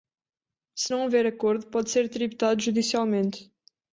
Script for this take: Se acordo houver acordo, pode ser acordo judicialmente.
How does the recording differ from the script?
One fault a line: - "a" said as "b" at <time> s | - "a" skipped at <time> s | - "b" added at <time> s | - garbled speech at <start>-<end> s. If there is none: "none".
- "acordo" said as "não" at 0.9 s
- "acordo" said as "tributado" at 2.1 s